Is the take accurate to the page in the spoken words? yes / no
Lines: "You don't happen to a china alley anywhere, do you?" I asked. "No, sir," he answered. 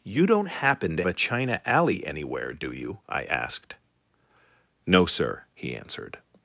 yes